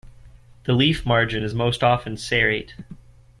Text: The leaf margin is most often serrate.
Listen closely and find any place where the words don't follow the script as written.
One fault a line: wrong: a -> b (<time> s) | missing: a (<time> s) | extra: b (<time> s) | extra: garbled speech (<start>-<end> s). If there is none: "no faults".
no faults